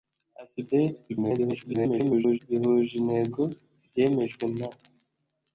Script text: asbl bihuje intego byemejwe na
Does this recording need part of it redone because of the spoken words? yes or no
yes